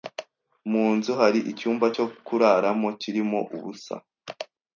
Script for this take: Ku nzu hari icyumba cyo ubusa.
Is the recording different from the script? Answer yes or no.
yes